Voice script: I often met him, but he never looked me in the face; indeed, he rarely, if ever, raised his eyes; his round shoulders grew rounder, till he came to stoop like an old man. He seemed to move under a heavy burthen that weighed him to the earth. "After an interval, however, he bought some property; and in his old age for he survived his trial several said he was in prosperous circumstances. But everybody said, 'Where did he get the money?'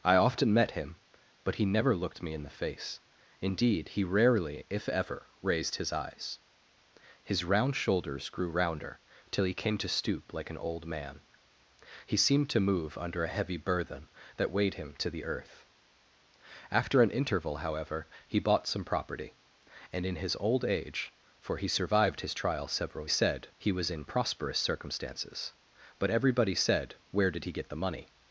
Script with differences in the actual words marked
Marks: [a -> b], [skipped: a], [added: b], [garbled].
I often met him, but he never looked me in the face; indeed, he rarely, if ever, raised his eyes; his round shoulders grew rounder, till he came to stoop like an old man. He seemed to move under a heavy burthen that weighed him to the earth. "After an interval, however, he bought some property; and in his old age for he survived his trial several said he was in prosperous circumstances. But everybody said, 'Where did he get the money?'